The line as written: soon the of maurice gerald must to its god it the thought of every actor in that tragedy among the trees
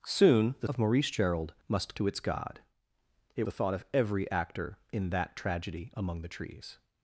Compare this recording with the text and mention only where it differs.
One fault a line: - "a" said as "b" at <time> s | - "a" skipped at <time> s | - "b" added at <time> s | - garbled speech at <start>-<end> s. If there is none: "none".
none